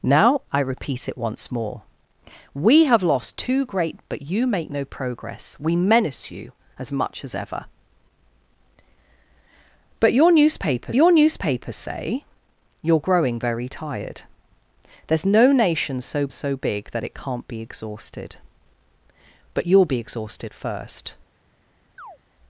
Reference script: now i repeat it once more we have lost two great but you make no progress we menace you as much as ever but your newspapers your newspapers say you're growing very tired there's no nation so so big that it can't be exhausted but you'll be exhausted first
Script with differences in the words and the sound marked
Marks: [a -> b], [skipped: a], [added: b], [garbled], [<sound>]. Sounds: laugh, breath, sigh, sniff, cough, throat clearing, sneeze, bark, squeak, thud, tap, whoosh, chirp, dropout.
now i repeat it once more we have lost two great but you make no progress we menace you as much as ever but your newspapers your newspapers say you're growing very tired there's no nation so so big that it can't be exhausted but you'll be exhausted first [chirp]